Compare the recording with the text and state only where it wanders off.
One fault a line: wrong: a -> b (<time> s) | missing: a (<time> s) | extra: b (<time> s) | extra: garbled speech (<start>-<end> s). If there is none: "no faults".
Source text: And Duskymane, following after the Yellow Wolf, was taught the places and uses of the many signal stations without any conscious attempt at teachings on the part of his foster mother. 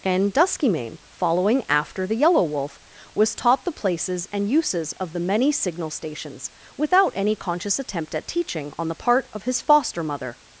wrong: teachings -> teaching (8.3 s)